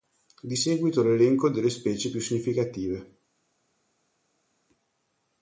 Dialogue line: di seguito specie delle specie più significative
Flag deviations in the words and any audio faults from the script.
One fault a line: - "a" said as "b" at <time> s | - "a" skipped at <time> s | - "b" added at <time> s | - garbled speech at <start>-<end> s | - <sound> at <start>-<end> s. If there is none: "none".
- "specie" said as "l'elenco" at 1.0 s